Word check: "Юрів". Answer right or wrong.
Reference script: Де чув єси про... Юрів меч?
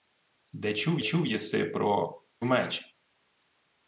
wrong